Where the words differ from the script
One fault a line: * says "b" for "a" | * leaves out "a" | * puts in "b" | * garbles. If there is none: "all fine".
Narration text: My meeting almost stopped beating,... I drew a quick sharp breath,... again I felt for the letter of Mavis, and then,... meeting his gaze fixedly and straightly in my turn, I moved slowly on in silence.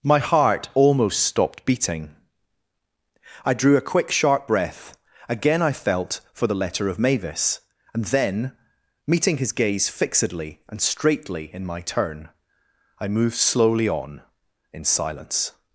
* says "heart" for "meeting"